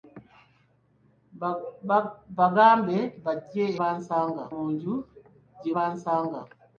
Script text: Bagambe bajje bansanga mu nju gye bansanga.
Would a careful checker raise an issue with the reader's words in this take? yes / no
no